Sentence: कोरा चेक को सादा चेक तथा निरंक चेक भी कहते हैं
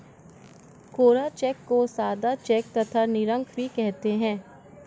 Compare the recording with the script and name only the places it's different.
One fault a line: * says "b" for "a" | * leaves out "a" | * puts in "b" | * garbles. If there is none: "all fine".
* leaves out "चेक"